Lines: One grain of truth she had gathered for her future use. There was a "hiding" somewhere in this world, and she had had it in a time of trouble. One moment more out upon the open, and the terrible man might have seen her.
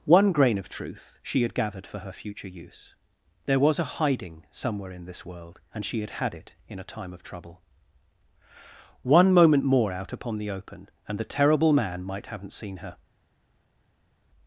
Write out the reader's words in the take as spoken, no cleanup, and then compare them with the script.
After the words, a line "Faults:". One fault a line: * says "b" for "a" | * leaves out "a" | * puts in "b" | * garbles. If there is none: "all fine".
One grain of truth she had gathered for her future use. There was a "hiding" somewhere in this world, and she had had it in a time of trouble. One moment more out upon the open, and the terrible man might haven't seen her.
Faults:
* says "haven't" for "have"